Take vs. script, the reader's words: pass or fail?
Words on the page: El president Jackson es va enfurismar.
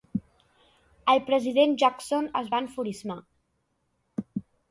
pass